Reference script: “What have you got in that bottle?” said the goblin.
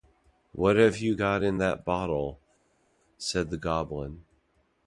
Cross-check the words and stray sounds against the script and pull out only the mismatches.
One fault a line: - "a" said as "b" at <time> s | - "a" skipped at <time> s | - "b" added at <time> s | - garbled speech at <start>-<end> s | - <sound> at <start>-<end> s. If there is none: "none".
none